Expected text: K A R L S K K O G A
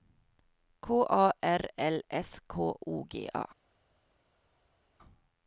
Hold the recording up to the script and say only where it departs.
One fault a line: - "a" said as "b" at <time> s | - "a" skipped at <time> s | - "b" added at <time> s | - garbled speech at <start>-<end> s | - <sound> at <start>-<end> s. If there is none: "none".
- "K" skipped at 2.7 s